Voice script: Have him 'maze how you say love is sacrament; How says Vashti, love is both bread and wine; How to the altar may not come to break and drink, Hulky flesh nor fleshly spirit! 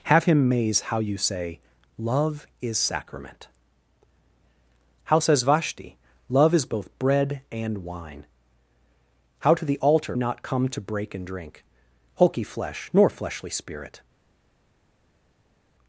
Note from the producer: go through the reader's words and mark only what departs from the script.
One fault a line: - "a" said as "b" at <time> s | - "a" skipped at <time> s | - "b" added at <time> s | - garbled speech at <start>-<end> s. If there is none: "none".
- "may" skipped at 10.2 s